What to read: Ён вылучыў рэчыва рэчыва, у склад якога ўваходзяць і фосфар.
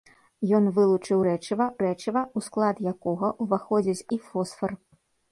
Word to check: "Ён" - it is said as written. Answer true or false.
true